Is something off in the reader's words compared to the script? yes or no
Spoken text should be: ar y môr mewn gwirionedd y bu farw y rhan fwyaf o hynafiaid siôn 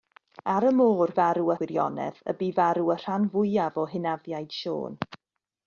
yes